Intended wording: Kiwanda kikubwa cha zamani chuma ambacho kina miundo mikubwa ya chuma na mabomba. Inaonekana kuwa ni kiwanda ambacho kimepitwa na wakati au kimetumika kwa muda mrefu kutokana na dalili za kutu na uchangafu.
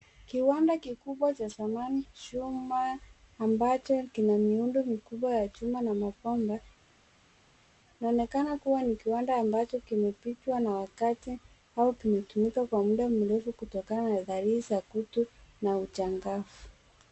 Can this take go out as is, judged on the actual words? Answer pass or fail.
pass